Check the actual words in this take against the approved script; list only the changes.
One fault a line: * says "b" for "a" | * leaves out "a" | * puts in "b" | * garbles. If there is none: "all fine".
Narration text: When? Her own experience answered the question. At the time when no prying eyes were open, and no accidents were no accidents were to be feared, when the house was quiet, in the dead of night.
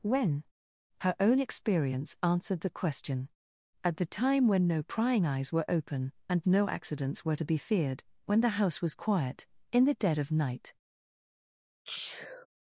* leaves out "no accidents were"